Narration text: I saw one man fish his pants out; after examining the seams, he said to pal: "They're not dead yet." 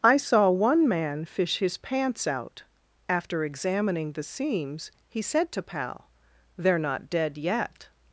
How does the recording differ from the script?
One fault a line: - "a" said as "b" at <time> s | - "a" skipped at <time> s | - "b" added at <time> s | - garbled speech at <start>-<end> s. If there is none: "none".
none